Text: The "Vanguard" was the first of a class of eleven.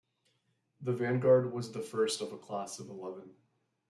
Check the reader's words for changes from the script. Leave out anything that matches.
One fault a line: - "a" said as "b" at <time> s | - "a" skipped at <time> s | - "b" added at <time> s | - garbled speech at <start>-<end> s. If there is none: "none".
none